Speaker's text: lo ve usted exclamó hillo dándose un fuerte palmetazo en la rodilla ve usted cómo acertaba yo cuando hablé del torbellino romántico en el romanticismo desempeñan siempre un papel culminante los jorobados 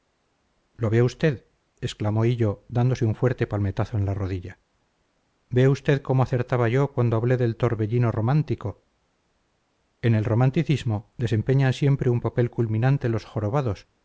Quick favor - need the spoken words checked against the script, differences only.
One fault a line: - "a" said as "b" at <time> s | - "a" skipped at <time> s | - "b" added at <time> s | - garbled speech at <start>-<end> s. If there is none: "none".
none